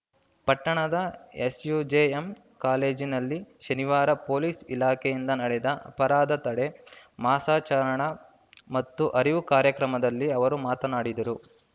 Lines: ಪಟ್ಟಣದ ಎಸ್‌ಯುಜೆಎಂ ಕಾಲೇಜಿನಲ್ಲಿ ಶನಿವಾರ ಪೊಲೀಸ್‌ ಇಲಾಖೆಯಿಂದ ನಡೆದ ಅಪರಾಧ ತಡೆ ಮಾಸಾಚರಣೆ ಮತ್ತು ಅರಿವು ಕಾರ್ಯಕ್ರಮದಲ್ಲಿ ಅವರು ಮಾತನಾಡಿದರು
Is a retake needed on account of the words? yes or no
no